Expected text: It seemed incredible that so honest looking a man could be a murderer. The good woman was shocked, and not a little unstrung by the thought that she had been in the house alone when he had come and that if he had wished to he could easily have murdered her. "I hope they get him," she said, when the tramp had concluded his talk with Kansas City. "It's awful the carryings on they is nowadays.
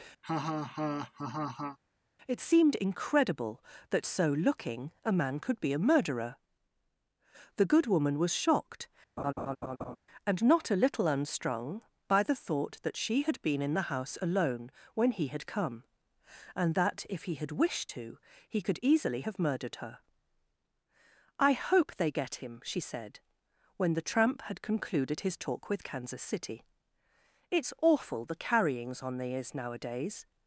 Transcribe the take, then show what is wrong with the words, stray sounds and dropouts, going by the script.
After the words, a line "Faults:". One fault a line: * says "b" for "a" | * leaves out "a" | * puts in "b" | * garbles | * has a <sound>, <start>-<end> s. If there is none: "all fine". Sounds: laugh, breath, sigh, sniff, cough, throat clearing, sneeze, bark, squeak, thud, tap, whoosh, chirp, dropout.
It seemed incredible that so looking a man could be a murderer. The good woman was shocked, and not a little unstrung by the thought that she had been in the house alone when he had come and that if he had wished to he could easily have murdered her. "I hope they get him," she said, when the tramp had concluded his talk with Kansas City. "It's awful the carryings on they is nowadays.
Faults:
* has a laugh, 0.2-1.8 s
* leaves out "honest"
* has a laugh, 9.2-10.0 s